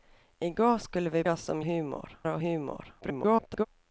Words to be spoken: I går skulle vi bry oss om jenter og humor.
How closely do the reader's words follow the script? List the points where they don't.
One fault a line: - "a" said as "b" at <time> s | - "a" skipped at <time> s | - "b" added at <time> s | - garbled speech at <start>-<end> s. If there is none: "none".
- "bry" skipped at 1.2 s
- "jenter" said as "humor" at 1.6 s
- garbled speech at 3.0-3.7 s